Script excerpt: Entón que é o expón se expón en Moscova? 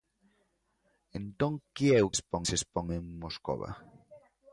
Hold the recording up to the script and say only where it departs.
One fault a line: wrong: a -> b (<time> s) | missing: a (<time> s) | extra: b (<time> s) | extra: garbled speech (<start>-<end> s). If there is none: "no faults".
no faults